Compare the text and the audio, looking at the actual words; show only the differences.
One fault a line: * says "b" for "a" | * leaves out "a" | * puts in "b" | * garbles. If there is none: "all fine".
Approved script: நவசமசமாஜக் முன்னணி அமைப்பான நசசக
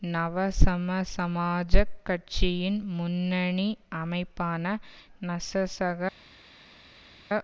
* puts in "கட்சியின்"